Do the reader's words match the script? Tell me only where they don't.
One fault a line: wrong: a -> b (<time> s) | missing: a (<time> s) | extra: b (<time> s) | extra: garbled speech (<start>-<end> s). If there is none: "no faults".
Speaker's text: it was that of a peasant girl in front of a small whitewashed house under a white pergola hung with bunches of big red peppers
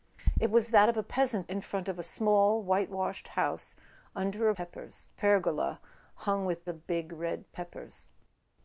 missing: girl (1.5 s)
wrong: white -> peppers (4.5 s)
missing: bunches (6.7 s)